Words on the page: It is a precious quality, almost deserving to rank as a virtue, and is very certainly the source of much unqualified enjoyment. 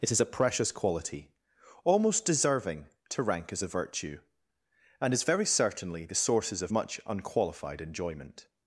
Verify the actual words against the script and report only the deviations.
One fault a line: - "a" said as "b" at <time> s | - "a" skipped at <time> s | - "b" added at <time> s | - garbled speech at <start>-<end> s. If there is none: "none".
- "source" said as "sources" at 6.2 s